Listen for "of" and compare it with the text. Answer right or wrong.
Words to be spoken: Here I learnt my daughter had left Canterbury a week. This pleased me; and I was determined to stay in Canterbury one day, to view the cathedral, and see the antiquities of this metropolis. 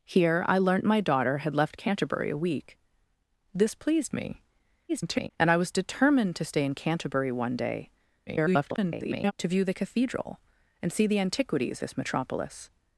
wrong